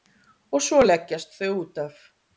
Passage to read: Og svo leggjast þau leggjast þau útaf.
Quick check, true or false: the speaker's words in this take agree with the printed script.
false